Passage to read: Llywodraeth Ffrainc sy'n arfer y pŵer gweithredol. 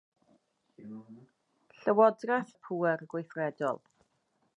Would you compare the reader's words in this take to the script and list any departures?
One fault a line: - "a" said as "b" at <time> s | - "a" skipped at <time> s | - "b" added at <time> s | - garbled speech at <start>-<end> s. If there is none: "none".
- "Ffrainc sy'n arfer" skipped at 2.5 s